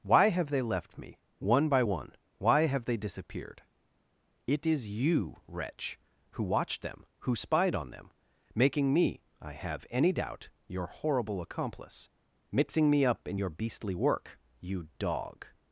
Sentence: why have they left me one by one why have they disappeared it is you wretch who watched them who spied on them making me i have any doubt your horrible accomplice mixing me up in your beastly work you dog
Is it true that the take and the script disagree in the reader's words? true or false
false